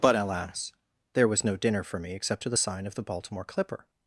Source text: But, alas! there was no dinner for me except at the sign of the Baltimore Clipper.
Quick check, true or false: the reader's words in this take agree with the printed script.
false